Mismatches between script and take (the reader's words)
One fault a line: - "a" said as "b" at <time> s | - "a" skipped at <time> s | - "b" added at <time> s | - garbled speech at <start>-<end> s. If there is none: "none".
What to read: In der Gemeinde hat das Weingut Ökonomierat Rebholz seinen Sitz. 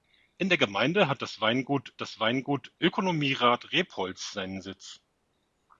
- "das Weingut" added at 2.0 s